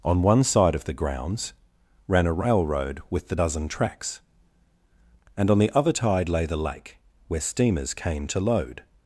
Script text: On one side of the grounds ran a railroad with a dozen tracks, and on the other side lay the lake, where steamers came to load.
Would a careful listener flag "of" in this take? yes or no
no